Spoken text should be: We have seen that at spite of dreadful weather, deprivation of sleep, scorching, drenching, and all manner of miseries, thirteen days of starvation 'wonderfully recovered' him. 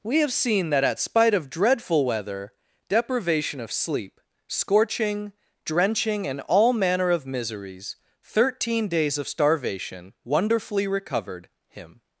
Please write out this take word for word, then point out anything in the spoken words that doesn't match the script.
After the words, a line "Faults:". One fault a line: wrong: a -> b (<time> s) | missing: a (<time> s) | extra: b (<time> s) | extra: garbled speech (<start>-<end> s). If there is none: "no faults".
We have seen that at spite of dreadful weather, deprivation of sleep, scorching, drenching, and all manner of miseries, thirteen days of starvation 'wonderfully recovered' him.
Faults:
no faults